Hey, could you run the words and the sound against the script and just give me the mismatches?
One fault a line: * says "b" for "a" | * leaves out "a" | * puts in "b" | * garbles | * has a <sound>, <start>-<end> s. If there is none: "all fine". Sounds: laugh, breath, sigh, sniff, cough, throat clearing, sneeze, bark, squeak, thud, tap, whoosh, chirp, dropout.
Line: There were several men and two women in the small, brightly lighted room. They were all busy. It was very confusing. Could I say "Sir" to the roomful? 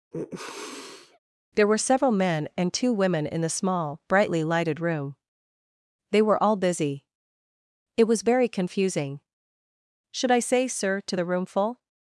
* has a sniff, 0.1-1.2 s
* says "Should" for "Could"